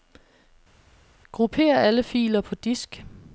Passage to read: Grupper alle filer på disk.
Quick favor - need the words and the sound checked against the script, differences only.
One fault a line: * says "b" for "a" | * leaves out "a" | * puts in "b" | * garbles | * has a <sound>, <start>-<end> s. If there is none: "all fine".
all fine